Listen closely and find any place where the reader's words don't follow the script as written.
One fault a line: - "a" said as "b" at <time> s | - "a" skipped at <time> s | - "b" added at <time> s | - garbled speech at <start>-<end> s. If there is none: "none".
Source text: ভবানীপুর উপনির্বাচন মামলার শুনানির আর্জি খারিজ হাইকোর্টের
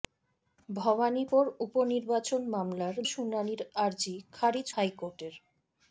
none